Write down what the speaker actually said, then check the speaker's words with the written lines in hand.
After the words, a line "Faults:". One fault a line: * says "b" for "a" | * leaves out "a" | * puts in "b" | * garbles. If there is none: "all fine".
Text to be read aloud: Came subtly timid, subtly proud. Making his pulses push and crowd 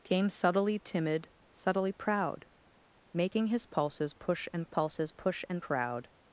Came subtly timid, subtly proud. Making his pulses push and pulses push and crowd
Faults:
* puts in "pulses push and"